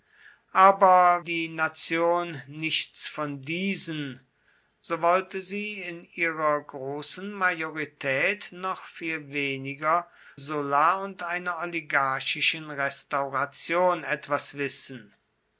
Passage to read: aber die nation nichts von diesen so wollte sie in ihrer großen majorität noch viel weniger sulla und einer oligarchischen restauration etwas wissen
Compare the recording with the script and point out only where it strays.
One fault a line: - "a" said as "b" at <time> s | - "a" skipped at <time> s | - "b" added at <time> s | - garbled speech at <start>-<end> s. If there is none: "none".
none